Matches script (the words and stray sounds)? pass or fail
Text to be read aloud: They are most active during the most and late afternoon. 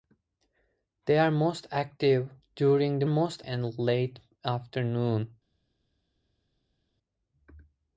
pass